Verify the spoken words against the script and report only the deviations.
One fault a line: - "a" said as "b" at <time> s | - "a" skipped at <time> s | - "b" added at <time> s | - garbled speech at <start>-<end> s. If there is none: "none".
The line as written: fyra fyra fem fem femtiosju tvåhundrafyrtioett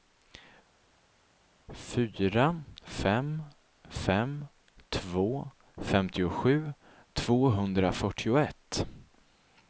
- "fyra" said as "fem" at 2.8 s
- "fem" said as "två" at 4.9 s